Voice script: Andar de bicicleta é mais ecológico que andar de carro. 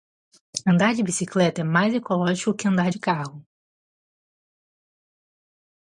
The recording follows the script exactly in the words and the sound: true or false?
true